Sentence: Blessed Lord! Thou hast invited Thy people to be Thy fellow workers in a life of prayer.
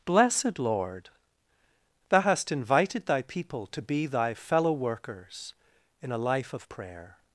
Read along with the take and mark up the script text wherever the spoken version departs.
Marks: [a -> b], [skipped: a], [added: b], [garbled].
Blessed Lord! Thou hast invited Thy people to be Thy fellow workers in a life of prayer.